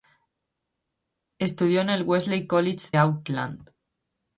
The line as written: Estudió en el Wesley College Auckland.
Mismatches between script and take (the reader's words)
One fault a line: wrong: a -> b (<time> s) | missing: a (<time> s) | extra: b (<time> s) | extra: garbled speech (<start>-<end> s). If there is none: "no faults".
no faults